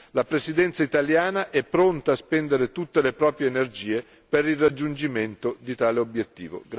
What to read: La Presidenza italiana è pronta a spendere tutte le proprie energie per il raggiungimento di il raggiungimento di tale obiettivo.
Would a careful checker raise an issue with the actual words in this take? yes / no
yes